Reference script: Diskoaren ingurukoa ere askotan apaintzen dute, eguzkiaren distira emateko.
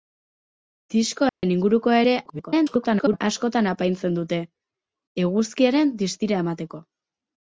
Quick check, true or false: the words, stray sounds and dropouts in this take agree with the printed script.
false